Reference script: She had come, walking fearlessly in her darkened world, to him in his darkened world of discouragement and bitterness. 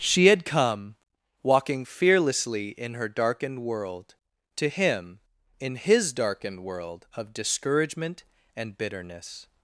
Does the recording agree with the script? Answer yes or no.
yes